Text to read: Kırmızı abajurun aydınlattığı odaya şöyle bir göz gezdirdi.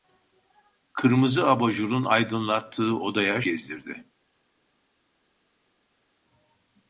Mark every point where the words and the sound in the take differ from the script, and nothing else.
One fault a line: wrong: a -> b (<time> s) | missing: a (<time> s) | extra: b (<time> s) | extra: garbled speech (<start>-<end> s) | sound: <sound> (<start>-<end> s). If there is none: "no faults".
missing: şöyle bir göz (3.4 s)